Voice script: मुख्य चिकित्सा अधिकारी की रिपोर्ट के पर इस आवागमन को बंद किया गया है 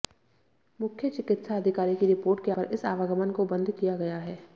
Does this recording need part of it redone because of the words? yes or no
no